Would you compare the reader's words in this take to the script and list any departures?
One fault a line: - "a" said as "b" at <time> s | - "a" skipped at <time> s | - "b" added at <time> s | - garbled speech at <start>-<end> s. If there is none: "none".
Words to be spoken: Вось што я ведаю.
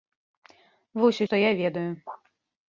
none